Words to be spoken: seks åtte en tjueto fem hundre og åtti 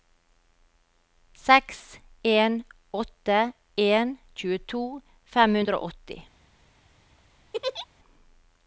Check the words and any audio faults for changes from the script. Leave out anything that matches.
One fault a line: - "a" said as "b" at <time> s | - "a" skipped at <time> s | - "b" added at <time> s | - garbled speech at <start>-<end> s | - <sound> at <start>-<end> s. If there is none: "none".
- "en" added at 2.3 s
- laugh at 7.5-7.9 s